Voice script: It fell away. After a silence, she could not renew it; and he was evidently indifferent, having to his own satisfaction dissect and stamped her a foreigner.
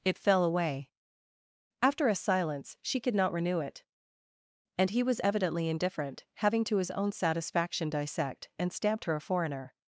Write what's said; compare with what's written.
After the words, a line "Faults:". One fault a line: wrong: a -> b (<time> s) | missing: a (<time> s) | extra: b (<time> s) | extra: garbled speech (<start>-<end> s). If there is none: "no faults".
It fell away. After a silence, she could not renew it; and he was evidently indifferent, having to his own satisfaction dissect and stamped her a foreigner.
Faults:
no faults